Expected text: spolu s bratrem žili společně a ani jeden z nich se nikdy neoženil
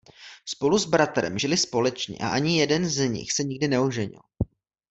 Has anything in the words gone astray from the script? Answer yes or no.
no